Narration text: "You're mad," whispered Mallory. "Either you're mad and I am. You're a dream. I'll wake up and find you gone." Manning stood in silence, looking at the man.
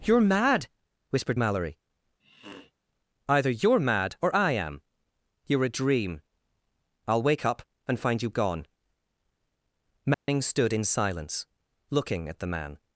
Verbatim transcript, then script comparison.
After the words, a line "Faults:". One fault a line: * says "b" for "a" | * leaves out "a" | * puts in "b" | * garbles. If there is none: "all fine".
"You're mad," whispered Mallory. "Either you're mad or I am. You're a dream. I'll wake up and find you gone." Manning stood in silence, looking at the man.
Faults:
* says "or" for "and"